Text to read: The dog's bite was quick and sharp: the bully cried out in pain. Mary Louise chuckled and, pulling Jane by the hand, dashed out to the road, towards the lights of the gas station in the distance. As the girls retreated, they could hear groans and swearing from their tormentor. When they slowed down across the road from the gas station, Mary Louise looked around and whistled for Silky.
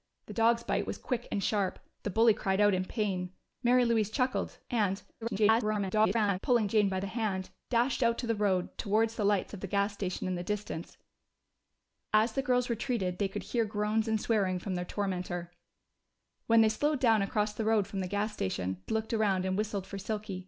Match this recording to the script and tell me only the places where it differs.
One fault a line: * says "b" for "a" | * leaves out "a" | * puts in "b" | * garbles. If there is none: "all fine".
* garbles
* leaves out "Mary Louise"